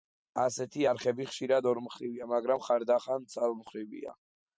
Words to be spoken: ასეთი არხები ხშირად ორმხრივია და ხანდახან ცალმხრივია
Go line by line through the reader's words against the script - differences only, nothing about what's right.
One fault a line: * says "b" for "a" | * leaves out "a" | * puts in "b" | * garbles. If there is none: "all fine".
* says "მაგრამ" for "და"